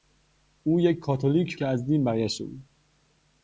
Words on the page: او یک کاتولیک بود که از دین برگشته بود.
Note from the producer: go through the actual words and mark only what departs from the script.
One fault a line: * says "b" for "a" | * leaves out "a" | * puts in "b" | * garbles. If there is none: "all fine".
* leaves out "بود"